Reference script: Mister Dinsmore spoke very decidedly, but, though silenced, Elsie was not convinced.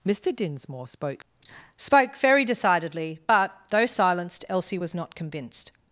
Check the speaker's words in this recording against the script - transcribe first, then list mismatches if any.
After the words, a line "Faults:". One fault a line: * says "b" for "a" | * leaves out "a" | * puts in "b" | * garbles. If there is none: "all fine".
Mister Dinsmore spoke spoke very decidedly, but, though silenced, Elsie was not convinced.
Faults:
* puts in "spoke"